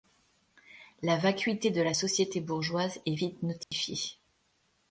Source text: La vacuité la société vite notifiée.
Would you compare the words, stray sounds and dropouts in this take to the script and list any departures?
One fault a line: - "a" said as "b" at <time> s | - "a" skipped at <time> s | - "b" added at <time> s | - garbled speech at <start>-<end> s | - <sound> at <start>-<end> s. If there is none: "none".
- "de" added at 1.7 s
- "bourgeoise est" added at 2.4 s
- dropout at 3.6-3.7 s